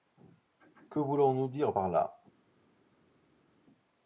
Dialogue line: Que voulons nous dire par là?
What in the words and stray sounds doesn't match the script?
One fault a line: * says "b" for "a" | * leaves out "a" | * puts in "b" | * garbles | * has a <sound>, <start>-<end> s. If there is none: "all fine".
all fine